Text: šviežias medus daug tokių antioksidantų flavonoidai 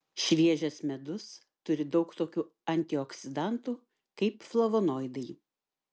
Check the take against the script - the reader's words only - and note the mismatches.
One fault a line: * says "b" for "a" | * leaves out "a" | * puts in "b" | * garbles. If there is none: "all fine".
* puts in "turi"
* puts in "kaip"